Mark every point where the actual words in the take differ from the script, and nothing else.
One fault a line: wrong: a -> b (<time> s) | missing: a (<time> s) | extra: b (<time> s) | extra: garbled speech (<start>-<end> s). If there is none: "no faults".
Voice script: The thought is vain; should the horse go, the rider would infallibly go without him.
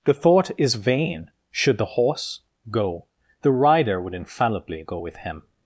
wrong: without -> with (4.9 s)